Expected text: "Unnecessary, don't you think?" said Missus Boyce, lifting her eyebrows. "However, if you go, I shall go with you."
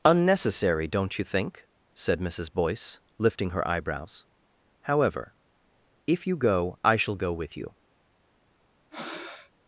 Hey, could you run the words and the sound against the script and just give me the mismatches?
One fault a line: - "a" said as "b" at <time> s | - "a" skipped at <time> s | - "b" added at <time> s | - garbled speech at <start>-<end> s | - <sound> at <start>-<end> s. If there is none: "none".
- breath at 8.9-9.5 s